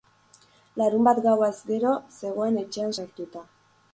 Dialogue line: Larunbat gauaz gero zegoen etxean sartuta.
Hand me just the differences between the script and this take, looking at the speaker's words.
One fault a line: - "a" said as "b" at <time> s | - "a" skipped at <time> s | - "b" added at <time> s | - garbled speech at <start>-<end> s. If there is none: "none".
none